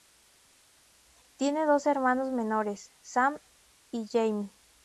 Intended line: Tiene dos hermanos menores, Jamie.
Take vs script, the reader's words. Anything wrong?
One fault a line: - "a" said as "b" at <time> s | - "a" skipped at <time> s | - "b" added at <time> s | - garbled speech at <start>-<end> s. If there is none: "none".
- "Sam y" added at 3.0 s